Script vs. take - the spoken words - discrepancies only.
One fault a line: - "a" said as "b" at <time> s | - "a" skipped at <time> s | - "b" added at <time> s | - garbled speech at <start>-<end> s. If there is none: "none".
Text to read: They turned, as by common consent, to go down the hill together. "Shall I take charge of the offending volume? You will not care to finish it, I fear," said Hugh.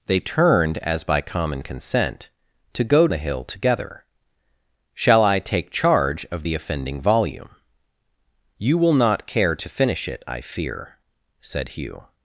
- "down" skipped at 3.1 s